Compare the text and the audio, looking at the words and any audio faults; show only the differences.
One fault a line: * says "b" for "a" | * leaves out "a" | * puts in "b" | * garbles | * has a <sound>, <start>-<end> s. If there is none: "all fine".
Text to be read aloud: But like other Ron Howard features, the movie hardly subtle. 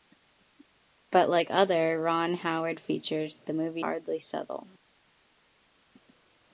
all fine